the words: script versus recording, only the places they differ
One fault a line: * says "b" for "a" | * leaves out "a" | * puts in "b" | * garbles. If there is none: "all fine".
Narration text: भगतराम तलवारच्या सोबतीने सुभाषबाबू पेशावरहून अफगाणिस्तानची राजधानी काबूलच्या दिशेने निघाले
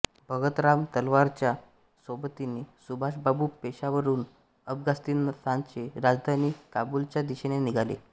all fine